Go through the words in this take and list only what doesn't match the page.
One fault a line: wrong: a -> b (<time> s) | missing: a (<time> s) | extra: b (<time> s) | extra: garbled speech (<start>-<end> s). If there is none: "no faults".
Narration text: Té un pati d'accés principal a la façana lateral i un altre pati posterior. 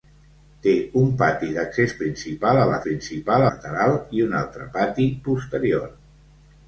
wrong: façana -> principal (2.8 s)